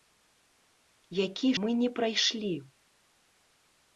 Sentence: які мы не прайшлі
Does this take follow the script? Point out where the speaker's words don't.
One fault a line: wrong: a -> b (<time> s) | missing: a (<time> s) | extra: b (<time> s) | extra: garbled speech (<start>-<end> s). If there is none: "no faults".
no faults